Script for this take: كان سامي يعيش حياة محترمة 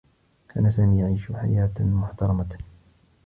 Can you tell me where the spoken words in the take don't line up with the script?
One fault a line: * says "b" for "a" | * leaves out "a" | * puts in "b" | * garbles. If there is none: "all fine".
all fine